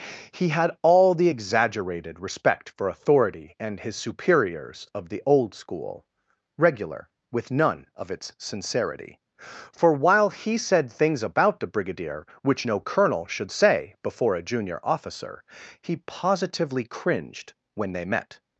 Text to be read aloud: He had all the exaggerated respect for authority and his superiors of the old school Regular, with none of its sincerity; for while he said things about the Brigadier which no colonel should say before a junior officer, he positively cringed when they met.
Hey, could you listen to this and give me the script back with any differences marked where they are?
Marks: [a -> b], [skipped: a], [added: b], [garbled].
He had all the exaggerated respect for authority and his superiors of the old school Regular, with none of its sincerity; for while he said things about the Brigadier which no colonel should say before a junior officer, he positively cringed when they met.